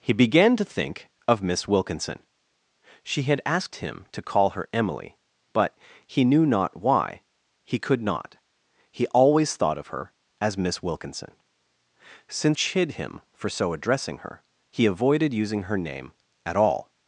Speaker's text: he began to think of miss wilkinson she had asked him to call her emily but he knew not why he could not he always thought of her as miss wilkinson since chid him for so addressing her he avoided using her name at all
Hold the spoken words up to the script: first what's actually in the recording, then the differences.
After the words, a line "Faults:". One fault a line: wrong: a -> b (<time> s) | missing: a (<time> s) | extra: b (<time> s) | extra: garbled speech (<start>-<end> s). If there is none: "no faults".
he began to think of miss wilkinson she had asked him to call her emily but he knew not why he could not he always thought of her as miss wilkinson since chid him for so addressing her he avoided using her name at all
Faults:
no faults